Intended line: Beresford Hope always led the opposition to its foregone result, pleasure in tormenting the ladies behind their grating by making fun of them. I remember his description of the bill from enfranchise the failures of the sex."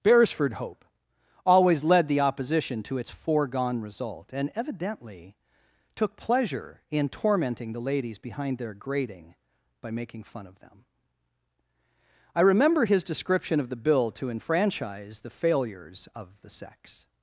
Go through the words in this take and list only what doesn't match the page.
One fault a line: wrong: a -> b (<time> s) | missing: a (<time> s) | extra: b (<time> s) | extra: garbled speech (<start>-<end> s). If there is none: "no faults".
extra: and evidently took (4.3 s)
wrong: from -> to (14.1 s)